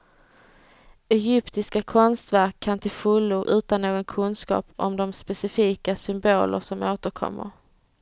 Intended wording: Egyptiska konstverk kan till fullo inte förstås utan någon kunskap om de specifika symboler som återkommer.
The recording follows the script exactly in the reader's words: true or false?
false